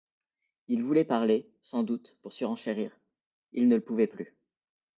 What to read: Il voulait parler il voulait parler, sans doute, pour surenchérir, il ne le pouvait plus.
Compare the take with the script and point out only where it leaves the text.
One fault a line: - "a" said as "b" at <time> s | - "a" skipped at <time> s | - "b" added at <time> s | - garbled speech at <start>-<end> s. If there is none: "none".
- "il voulait parler" skipped at 1.5 s